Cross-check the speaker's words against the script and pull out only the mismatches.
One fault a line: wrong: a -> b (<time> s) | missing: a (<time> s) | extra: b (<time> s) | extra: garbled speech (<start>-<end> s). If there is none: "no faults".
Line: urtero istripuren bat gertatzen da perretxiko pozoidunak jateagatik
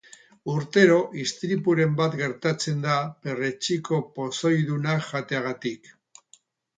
no faults